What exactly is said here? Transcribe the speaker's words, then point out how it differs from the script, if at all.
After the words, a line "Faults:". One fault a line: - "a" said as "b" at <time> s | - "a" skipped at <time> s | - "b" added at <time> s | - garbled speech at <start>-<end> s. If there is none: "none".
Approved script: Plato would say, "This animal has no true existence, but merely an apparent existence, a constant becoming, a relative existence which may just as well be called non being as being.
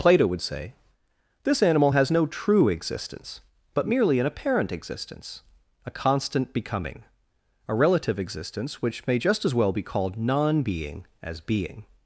Plato would say, "This animal has no true existence, but merely an apparent existence, a constant becoming, a relative existence which may just as well be called non being as being.
Faults:
none